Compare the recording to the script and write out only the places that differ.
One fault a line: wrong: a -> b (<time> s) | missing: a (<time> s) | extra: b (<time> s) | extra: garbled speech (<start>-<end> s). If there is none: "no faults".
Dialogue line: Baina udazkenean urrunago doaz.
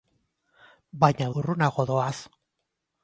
missing: udazkenean (1.3 s)